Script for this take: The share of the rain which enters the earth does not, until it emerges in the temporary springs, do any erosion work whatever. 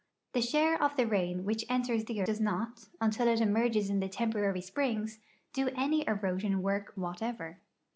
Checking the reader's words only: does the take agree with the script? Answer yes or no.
no